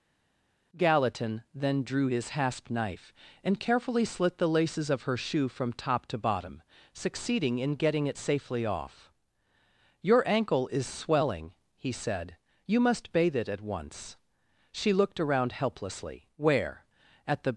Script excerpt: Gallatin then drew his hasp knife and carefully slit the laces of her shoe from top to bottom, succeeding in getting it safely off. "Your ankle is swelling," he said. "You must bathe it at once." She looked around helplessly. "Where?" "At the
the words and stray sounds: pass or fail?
pass